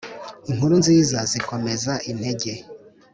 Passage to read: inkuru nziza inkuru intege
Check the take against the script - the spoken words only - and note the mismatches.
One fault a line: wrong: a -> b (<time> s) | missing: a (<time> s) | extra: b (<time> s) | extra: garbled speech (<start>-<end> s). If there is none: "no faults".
wrong: inkuru -> zikomeza (1.3 s)